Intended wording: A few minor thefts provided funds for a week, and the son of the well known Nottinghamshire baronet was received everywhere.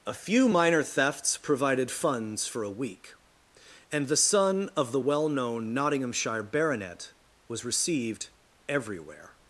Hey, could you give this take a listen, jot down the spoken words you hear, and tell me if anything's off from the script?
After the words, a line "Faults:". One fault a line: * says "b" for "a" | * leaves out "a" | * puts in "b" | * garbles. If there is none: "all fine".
A few minor thefts provided funds for a week, and the son of the well known Nottinghamshire baronet was received everywhere.
Faults:
all fine